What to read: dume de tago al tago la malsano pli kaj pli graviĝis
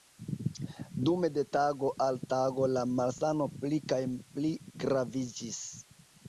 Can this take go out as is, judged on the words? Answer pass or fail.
pass